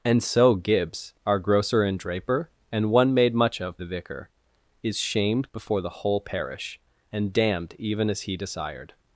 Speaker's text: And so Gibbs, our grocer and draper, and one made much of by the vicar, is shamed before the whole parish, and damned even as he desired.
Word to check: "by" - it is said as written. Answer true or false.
false